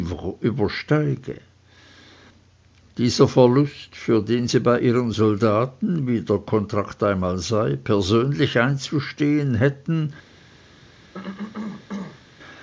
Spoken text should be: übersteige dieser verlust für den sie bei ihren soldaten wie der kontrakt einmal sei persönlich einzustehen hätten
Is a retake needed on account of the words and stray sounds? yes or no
yes